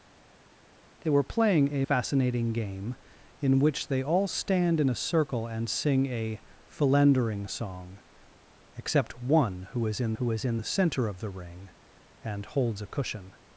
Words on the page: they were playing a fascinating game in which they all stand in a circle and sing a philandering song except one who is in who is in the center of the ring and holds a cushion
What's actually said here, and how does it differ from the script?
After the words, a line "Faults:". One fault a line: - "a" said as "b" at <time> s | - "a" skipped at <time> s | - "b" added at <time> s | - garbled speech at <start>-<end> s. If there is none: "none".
they were playing a fascinating game in which they all stand in a circle and sing a philandering song except one who is in who is in the center of the ring and holds a cushion
Faults:
none